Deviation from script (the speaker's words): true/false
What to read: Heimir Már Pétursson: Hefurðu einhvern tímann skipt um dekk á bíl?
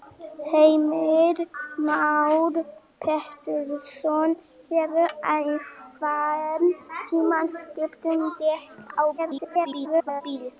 true